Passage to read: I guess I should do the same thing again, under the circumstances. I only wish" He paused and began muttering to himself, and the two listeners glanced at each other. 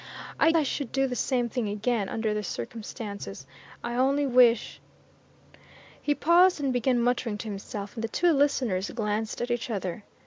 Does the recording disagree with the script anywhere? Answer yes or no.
yes